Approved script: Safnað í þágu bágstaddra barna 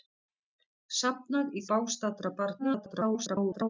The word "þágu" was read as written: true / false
false